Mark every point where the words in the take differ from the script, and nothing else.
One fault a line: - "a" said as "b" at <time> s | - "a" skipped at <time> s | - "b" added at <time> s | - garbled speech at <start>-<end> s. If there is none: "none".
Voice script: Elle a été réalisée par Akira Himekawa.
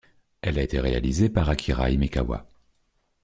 none